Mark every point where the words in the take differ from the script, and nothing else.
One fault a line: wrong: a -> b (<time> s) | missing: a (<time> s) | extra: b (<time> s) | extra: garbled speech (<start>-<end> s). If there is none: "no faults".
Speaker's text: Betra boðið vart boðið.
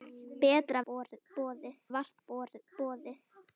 no faults